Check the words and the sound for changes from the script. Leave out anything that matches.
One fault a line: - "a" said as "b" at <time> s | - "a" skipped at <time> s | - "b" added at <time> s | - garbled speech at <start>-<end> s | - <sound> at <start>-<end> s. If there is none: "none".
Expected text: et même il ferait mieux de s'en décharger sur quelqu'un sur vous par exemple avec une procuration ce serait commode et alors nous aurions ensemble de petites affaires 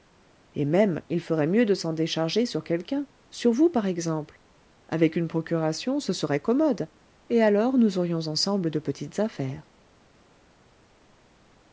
none